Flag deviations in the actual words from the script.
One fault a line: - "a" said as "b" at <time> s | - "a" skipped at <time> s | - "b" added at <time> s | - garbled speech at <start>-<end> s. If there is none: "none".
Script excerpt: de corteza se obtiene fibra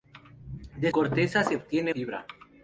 none